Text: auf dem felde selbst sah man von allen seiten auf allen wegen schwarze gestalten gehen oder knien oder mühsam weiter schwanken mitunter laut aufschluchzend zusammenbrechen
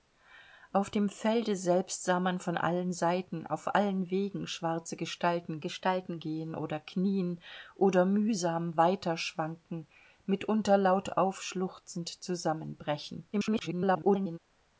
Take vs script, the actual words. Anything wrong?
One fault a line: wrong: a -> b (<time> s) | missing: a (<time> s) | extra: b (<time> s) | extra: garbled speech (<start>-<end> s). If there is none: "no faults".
extra: gestalten (5.6 s)
extra: garbled speech (13.3-14.4 s)